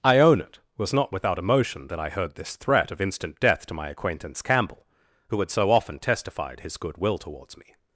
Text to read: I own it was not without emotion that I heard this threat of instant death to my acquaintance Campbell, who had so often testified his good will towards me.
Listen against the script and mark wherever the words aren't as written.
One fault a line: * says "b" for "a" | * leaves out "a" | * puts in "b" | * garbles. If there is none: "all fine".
all fine